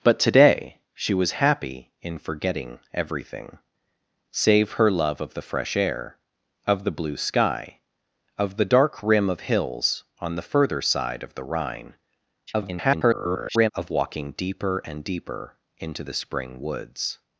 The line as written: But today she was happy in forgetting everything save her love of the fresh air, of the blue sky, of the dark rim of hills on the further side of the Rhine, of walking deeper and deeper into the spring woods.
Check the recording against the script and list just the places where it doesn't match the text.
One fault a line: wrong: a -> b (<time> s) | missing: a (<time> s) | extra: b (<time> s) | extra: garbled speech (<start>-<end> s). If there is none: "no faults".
extra: garbled speech (12.5-13.7 s)